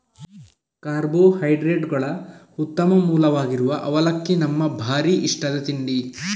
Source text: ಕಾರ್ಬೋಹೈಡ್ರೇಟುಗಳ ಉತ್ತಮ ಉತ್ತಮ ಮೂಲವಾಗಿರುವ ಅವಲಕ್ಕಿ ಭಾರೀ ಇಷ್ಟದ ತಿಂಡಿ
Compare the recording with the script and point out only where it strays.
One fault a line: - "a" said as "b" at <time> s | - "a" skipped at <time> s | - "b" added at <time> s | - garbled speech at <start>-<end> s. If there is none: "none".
- "ಉತ್ತಮ" skipped at 2.9 s
- "ನಮ್ಮ" added at 4.4 s